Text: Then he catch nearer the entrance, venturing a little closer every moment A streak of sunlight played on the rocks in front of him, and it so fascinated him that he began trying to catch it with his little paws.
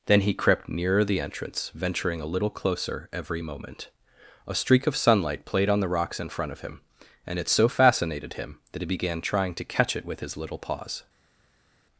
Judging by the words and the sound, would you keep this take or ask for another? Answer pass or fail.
fail